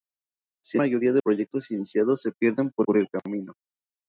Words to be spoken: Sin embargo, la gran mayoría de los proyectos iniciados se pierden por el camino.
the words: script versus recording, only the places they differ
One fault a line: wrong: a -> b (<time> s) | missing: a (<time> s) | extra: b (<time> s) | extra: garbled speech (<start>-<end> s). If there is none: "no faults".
missing: embargo la gran (0.8 s)
missing: los (1.2 s)
extra: por (2.8 s)